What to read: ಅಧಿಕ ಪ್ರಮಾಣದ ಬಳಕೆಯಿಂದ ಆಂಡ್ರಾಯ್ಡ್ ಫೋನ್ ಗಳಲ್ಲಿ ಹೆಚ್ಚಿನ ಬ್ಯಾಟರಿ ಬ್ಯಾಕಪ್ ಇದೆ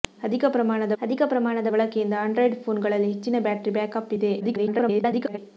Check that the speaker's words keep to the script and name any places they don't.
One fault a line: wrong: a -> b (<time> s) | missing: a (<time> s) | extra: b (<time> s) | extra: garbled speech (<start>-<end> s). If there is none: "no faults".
extra: ಅಧಿಕ ಪ್ರಮಾಣದ (1.0 s)
extra: garbled speech (4.4-5.4 s)